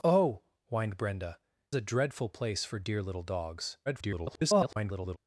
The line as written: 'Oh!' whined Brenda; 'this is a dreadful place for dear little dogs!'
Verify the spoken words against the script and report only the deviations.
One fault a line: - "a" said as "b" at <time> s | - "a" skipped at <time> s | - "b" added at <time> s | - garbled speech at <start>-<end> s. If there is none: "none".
- "this is" skipped at 1.4 s
- garbled speech at 3.9-5.2 s